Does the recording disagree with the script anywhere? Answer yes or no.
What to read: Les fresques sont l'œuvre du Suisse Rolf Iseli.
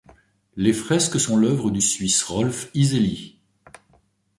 no